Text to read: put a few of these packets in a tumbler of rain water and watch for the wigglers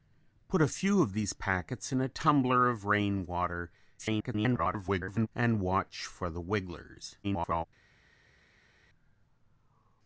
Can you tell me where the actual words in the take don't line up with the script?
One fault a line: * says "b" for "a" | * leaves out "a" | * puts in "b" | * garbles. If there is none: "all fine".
* garbles
* garbles